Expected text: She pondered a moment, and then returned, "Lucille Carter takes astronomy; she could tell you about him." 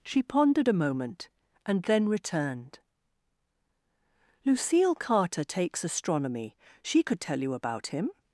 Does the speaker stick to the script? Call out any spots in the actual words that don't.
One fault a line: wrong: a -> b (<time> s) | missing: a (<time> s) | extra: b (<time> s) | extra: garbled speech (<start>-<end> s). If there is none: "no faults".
no faults